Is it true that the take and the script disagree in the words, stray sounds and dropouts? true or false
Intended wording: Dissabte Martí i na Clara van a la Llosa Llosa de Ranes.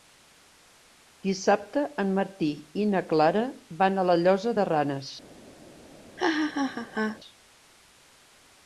true